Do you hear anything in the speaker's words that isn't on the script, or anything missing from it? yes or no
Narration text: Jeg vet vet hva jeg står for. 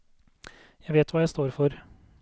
yes